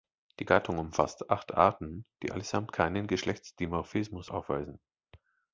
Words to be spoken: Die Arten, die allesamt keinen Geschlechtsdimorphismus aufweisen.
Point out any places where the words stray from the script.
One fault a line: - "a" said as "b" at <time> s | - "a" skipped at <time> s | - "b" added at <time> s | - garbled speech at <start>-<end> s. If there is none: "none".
- "Gattung umfasst acht" added at 0.4 s